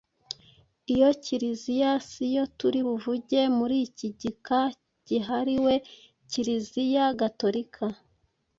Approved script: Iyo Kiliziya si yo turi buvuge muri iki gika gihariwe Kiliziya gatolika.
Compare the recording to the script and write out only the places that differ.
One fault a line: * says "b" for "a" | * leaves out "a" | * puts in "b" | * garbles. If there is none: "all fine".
all fine